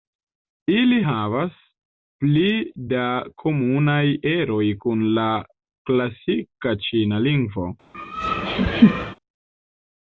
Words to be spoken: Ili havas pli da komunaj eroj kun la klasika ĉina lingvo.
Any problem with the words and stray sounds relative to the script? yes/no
yes